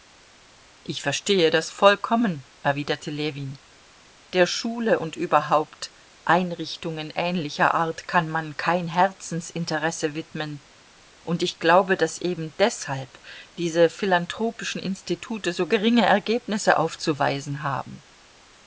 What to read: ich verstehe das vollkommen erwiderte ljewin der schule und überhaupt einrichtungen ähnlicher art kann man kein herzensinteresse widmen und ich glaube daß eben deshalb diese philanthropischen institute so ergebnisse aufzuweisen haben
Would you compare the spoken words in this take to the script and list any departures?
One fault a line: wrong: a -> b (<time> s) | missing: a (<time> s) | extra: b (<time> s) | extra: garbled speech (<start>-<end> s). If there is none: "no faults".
extra: geringe (15.7 s)